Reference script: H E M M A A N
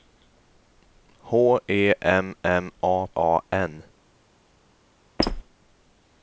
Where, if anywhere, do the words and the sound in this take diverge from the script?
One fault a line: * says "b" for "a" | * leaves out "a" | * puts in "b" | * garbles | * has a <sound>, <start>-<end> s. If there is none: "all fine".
* has a squeak, 5.2-5.4 s